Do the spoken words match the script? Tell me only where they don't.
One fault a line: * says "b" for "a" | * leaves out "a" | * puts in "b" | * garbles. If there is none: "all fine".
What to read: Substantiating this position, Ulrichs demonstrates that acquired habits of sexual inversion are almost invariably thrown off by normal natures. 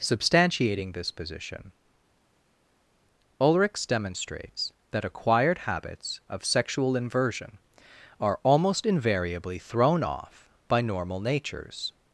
all fine